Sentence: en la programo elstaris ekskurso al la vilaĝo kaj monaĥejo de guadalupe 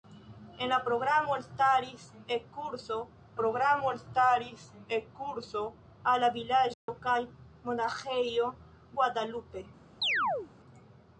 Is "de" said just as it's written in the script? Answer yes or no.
no